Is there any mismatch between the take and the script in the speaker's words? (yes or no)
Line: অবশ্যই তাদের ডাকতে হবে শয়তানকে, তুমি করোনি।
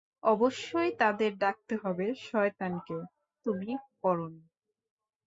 no